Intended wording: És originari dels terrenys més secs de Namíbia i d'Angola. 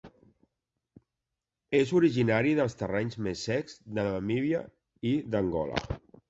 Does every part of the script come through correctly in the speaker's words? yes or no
yes